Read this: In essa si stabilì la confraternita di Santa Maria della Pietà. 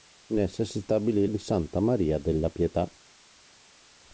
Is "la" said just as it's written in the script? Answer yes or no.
no